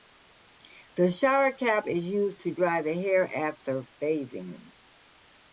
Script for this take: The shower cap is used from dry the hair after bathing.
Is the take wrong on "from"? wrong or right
wrong